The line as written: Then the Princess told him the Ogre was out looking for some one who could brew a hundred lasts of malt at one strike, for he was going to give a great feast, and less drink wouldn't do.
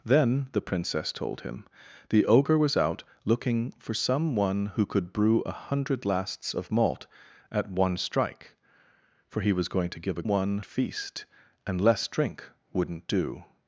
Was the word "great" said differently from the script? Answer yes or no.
yes